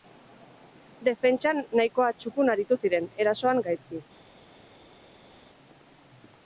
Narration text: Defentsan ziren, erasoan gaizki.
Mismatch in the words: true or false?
true